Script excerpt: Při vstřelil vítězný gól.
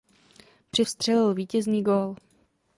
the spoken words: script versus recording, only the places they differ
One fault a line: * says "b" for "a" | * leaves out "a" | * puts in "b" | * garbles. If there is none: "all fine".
all fine